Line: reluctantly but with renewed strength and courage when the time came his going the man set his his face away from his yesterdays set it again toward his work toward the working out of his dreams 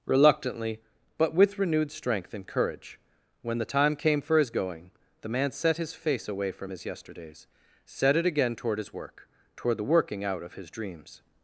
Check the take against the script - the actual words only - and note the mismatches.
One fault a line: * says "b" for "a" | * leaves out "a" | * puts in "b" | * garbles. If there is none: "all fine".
* puts in "for"
* leaves out "his"